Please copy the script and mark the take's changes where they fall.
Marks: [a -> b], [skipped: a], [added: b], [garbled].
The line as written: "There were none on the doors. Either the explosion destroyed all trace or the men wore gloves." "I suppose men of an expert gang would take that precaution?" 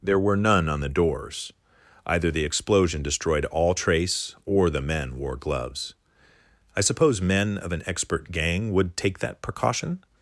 "There were none on the doors. Either the explosion destroyed all trace or the men wore gloves." "I suppose men of an expert gang would take that precaution?"